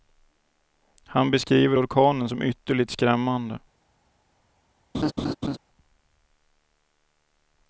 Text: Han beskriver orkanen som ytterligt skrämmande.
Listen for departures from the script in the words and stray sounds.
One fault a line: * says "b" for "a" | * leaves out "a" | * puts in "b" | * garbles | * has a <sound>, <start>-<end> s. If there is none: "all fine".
* has a laugh, 4.9-5.6 s